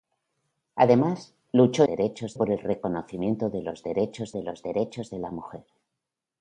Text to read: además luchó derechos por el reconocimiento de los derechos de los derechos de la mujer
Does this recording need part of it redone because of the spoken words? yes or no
no